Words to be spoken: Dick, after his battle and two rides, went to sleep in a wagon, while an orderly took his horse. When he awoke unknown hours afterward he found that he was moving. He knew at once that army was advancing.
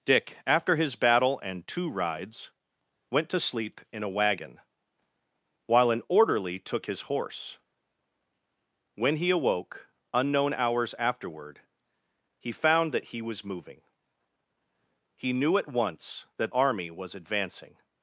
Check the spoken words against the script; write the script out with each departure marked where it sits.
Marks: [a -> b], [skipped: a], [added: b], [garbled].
Dick, after his battle and two rides, went to sleep in a wagon, while an orderly took his horse. When he awoke unknown hours afterward he found that he was moving. He knew at once that army was advancing.